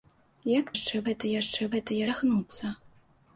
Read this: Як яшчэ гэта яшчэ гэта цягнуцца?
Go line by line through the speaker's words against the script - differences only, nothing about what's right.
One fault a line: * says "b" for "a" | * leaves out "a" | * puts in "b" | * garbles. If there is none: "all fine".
all fine